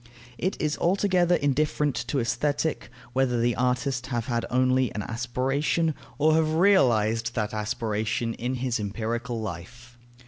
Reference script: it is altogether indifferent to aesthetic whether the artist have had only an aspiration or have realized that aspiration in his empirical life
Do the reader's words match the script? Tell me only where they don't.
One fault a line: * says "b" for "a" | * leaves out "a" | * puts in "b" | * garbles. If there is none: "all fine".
all fine